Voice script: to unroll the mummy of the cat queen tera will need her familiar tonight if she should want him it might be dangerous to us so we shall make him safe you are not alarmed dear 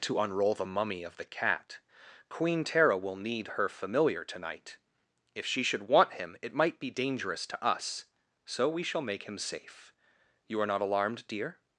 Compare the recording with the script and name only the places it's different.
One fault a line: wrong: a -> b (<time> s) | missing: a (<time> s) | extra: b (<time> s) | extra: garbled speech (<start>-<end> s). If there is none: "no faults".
no faults